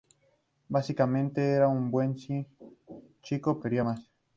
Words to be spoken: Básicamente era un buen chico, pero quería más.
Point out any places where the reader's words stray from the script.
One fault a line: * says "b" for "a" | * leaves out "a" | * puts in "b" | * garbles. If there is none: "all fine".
* leaves out "pero"